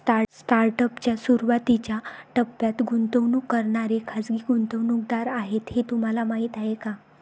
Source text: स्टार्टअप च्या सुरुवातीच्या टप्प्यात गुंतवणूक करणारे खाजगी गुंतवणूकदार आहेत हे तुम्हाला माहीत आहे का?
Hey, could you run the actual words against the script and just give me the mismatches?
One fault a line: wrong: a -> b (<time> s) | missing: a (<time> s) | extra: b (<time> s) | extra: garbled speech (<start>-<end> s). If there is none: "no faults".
no faults